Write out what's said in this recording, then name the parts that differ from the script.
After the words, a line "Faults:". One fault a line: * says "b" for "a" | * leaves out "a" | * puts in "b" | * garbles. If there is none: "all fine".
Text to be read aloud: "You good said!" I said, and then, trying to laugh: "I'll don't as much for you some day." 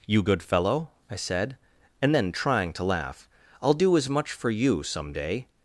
"You good fellow!" I said, and then, trying to laugh: "I'll do as much for you some day."
Faults:
* says "fellow" for "said"
* says "do" for "don't"